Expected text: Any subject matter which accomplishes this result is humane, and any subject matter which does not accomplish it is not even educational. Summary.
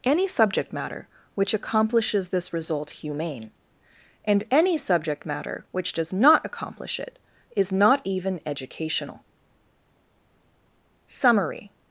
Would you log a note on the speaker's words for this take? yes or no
yes